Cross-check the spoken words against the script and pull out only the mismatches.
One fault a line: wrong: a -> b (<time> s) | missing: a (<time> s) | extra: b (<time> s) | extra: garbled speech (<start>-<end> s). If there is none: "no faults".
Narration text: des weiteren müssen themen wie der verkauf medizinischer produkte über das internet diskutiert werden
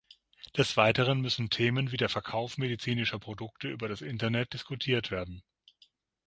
no faults